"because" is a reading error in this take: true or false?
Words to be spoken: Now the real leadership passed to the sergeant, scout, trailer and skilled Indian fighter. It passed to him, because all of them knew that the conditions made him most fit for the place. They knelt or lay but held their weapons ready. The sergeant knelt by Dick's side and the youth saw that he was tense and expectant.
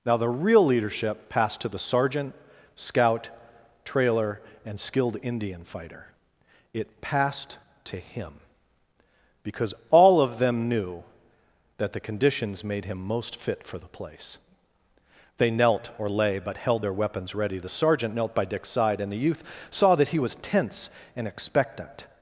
false